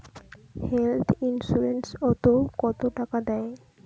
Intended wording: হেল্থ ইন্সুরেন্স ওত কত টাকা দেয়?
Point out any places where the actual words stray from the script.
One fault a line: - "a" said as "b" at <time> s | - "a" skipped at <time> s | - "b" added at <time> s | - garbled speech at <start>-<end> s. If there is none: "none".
none